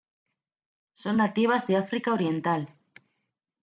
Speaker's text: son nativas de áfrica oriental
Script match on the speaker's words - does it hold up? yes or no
yes